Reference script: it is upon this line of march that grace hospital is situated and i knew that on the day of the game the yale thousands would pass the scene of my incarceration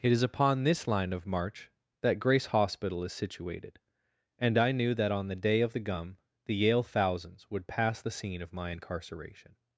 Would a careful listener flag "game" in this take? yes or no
yes